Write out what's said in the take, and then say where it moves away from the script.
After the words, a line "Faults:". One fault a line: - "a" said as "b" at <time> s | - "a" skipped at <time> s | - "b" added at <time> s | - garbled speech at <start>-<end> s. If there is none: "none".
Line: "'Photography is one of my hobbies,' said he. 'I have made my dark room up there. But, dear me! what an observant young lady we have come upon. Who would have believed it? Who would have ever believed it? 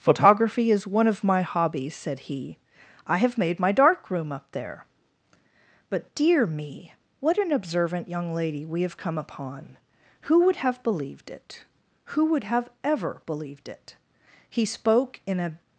"'Photography is one of my hobbies,' said he. 'I have made my dark room up there. But, dear me! what an observant young lady we have come upon. Who would have believed it? Who would have ever believed it? He spoke in a
Faults:
- "He spoke in a" added at 14.5 s